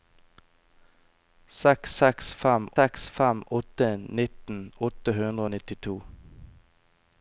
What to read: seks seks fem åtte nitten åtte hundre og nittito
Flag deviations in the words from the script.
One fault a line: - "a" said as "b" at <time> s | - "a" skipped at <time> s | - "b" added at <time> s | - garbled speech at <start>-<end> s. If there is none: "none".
- "seks fem" added at 2.8 s